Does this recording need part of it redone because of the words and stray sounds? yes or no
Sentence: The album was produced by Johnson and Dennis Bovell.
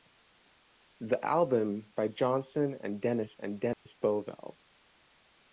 yes